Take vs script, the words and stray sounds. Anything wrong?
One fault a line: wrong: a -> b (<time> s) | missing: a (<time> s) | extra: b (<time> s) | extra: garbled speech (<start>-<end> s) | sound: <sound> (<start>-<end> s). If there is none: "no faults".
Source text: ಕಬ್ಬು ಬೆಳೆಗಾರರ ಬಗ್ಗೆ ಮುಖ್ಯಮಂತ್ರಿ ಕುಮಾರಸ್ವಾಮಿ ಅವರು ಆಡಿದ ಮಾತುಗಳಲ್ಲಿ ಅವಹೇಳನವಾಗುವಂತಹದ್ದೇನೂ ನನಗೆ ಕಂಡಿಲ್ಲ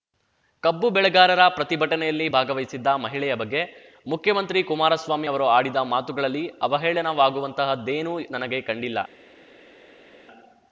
extra: ಪ್ರತಿಭಟನೆಯಲ್ಲಿ ಭಾಗವಹಿಸಿದ್ದ ಮಹಿಳೆಯ (1.5 s)